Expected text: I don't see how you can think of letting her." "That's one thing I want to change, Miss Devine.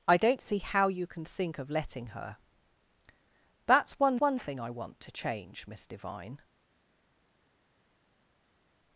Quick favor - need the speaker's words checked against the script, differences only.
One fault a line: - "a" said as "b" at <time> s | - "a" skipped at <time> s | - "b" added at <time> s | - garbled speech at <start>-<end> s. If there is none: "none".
- "one" added at 4.2 s